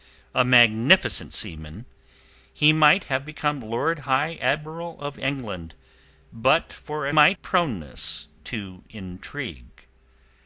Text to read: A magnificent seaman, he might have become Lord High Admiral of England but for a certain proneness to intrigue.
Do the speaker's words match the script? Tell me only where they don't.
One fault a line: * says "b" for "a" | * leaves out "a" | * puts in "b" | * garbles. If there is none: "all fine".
* says "might" for "certain"